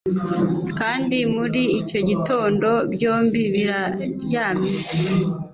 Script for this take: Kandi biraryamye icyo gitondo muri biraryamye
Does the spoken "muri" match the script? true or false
false